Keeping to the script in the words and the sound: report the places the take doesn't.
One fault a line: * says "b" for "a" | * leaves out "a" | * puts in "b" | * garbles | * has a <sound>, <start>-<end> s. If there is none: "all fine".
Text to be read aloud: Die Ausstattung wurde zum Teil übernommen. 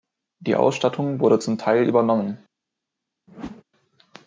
* has a whoosh, 3.3-3.6 s